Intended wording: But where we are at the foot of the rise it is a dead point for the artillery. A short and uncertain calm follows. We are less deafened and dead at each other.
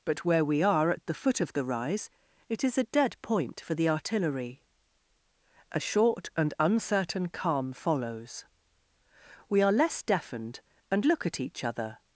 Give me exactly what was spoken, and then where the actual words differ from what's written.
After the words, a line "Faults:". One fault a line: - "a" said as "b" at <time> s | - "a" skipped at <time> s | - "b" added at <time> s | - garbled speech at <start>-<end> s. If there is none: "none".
But where we are at the foot of the rise it is a dead point for the artillery. A short and uncertain calm follows. We are less deafened and look at each other.
Faults:
- "dead" said as "look" at 11.1 s